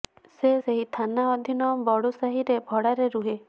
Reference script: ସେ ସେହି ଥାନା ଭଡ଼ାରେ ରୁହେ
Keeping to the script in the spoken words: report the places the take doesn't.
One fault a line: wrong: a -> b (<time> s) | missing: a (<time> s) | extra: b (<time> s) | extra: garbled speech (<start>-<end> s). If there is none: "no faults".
extra: ଅଧୀନ ବଡ଼ୁ ସାହିରେ (1.3 s)